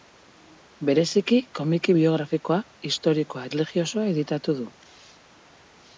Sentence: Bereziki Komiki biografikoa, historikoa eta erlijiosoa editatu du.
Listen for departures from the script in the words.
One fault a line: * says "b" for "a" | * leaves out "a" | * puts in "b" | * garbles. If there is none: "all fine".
* leaves out "eta"